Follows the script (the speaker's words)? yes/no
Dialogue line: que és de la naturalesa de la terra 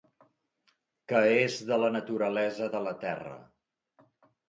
yes